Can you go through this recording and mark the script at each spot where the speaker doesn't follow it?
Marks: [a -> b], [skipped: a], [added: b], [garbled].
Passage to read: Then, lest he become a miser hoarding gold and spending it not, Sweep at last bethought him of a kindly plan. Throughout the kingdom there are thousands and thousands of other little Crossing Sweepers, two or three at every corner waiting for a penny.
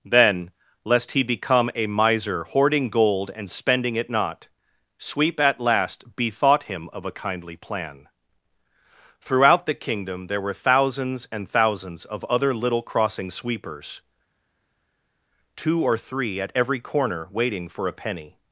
Then, lest he become a miser hoarding gold and spending it not, Sweep at last bethought him of a kindly plan. Throughout the kingdom there [are -> were] thousands and thousands of other little Crossing Sweepers, two or three at every corner waiting for a penny.